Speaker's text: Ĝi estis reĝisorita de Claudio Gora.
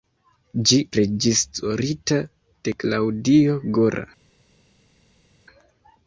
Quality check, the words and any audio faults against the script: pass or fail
fail